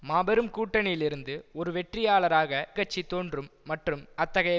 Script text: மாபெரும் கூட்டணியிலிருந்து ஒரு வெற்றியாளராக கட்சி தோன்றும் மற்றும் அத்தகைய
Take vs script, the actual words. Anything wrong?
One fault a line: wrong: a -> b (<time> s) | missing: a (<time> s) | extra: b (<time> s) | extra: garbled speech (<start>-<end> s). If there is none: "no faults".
no faults